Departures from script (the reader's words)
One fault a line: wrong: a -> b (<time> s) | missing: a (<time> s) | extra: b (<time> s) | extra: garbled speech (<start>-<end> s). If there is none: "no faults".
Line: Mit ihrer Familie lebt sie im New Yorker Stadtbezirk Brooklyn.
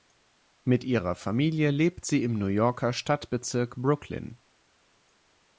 no faults